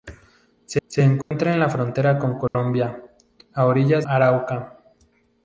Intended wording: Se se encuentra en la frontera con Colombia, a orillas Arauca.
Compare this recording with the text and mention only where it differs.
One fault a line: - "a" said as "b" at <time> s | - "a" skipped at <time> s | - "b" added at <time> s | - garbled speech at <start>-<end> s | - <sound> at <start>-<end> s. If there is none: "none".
- dropout at 1.2-1.3 s
- dropout at 2.5-2.5 s